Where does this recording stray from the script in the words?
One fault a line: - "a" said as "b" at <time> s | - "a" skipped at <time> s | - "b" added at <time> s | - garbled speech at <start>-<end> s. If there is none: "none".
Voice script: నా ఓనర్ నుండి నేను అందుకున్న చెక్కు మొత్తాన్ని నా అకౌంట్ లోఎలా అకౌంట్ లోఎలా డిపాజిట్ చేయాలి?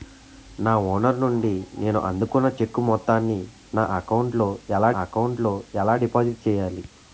none